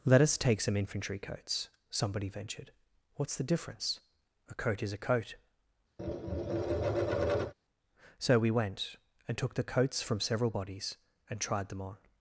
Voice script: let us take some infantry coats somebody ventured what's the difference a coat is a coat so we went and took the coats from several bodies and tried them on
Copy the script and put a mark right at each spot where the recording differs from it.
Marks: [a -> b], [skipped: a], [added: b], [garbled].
let us take some infantry coats somebody ventured what's the difference a coat is a coat so we went and took the coats from several bodies and tried them on